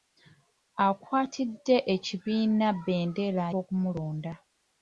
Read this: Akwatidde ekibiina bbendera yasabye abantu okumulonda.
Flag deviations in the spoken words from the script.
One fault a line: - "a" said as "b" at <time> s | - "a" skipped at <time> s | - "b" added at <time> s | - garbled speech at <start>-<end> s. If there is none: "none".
- "yasabye abantu" skipped at 3.5 s